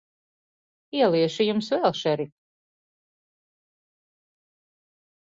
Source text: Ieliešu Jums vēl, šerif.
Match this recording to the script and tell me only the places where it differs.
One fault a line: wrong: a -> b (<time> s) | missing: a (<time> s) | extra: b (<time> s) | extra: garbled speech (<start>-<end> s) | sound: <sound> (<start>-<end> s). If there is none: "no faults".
no faults